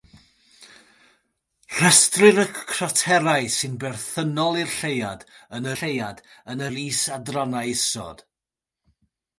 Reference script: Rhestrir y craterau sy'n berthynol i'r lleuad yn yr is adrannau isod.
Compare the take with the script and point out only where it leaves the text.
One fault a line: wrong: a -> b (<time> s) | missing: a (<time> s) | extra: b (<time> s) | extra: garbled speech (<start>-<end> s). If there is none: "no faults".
extra: lleuad yn (5.8 s)